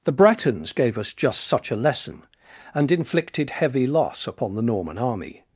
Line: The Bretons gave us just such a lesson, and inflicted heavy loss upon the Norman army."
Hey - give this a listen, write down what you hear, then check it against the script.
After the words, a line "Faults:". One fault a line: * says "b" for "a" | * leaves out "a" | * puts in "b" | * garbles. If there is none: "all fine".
The Bretons gave us just such a lesson, and inflicted heavy loss upon the Norman army."
Faults:
all fine